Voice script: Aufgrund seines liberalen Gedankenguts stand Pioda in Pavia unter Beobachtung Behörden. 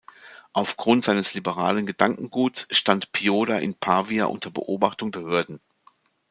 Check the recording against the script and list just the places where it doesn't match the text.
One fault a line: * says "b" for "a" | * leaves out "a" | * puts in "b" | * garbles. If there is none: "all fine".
all fine